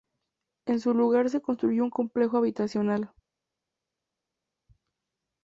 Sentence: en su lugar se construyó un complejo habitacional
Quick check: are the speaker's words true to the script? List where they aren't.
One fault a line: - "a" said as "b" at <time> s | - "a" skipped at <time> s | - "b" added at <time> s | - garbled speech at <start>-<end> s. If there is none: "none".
none